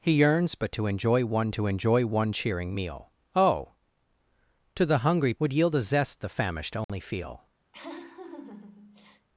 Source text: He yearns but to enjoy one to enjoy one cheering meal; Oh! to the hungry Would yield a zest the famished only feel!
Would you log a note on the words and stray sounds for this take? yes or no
yes